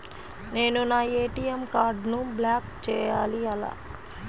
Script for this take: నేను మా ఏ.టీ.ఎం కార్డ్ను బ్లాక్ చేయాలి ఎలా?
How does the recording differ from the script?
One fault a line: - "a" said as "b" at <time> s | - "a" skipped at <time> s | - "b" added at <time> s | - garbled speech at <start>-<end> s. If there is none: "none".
- "మా" said as "నా" at 0.8 s